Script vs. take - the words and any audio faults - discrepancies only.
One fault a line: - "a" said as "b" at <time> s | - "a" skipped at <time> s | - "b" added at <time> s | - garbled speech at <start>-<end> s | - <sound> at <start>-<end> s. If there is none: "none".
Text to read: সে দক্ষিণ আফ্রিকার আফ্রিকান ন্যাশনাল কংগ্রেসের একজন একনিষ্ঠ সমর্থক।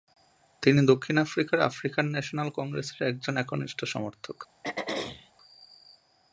- "সে" said as "তিনি" at 0.6 s
- throat clearing at 4.6-5.3 s